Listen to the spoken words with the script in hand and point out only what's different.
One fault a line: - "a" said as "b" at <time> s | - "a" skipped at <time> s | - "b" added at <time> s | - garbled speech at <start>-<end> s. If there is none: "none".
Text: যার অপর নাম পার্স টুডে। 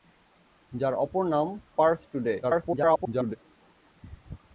- garbled speech at 2.4-3.4 s